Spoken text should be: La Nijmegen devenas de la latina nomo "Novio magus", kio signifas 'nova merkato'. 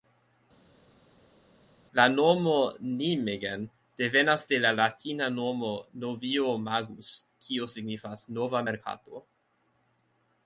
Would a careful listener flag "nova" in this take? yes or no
no